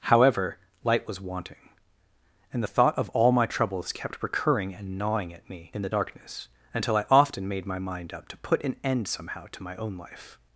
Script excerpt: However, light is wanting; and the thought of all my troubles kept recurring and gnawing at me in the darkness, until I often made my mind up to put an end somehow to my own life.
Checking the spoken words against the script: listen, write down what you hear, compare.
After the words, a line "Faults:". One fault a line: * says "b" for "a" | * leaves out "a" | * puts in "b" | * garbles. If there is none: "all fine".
However, light was wanting; and the thought of all my troubles kept recurring and gnawing at me in the darkness, until I often made my mind up to put an end somehow to my own life.
Faults:
* says "was" for "is"